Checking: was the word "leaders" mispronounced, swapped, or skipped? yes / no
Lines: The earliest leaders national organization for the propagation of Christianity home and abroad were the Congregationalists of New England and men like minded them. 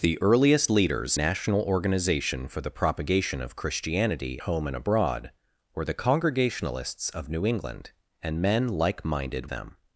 no